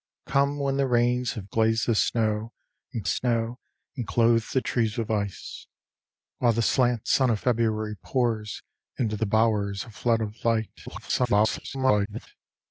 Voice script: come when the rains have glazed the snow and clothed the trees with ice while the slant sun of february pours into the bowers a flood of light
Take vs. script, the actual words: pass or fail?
fail